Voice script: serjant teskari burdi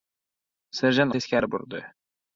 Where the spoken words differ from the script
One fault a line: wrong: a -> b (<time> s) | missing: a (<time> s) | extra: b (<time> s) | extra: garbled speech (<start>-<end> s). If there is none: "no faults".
no faults